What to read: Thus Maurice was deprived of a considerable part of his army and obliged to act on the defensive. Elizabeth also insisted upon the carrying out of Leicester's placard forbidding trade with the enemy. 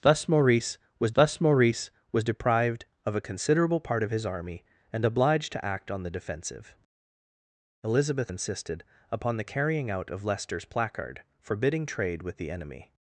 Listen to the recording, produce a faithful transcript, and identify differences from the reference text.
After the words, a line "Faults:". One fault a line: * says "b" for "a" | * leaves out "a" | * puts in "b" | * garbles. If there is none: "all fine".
Thus Maurice was thus Maurice was deprived of a considerable part of his army and obliged to act on the defensive. Elizabeth insisted upon the carrying out of Leicester's placard forbidding trade with the enemy.
Faults:
* puts in "thus Maurice was"
* leaves out "also"